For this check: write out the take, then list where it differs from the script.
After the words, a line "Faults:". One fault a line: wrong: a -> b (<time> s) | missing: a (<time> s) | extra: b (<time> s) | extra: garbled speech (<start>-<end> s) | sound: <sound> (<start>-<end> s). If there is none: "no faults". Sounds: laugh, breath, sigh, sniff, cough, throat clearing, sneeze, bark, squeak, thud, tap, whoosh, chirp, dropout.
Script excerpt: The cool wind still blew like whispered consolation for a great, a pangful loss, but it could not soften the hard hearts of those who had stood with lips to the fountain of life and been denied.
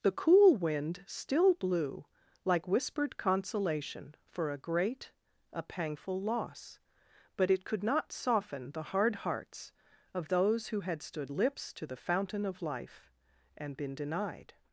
The cool wind still blew like whispered consolation for a great, a pangful loss, but it could not soften the hard hearts of those who had stood lips to the fountain of life and been denied.
Faults:
missing: with (11.3 s)